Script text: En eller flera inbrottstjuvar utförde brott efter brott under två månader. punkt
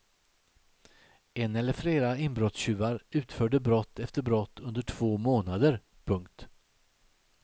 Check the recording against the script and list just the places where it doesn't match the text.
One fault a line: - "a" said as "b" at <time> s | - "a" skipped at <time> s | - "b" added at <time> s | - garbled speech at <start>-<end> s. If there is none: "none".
none